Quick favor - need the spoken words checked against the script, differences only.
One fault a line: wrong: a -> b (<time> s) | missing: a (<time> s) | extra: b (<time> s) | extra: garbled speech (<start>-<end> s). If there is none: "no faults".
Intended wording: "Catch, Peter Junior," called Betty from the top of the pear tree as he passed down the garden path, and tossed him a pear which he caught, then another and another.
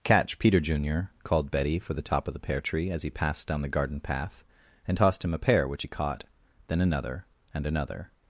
wrong: from -> for (1.8 s)